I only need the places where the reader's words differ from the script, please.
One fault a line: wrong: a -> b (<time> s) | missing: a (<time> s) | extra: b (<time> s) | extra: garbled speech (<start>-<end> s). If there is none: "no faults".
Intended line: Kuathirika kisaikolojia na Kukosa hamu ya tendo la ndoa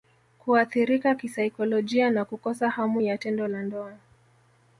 no faults